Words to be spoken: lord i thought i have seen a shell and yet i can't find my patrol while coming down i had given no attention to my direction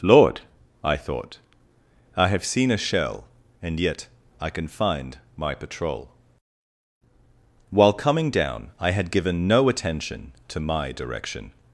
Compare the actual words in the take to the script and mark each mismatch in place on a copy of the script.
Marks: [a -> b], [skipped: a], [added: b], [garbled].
lord i thought i have seen a shell and yet i [can't -> can] find my patrol while coming down i had given no attention to my direction